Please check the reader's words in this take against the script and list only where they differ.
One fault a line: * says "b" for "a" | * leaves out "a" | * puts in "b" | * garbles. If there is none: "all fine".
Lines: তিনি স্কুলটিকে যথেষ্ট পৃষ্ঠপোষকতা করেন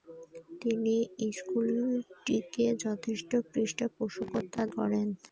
all fine